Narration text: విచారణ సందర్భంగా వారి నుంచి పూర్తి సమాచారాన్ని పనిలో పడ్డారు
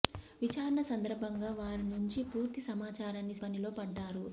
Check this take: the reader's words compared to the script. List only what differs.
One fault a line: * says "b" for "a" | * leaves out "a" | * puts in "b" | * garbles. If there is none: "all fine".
all fine